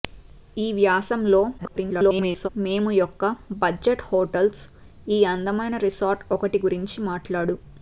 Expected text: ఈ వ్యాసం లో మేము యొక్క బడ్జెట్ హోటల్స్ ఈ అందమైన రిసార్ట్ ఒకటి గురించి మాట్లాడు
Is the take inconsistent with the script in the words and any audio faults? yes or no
yes